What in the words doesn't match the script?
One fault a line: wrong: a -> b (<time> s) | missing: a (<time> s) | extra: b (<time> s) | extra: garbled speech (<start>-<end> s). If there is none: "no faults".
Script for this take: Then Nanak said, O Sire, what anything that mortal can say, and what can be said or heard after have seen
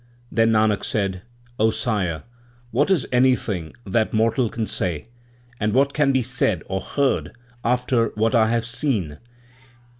extra: is (2.9 s)
extra: what I (8.1 s)